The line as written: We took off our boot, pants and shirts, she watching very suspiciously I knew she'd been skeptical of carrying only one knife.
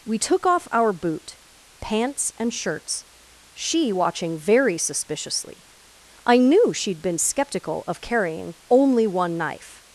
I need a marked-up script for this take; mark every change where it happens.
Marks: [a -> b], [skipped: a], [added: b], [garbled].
We took off our boot, pants and shirts, she watching very suspiciously I knew she'd been skeptical of carrying only one knife.